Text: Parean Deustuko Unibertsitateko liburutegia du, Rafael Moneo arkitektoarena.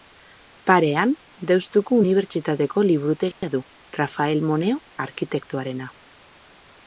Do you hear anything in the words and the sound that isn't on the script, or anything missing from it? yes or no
yes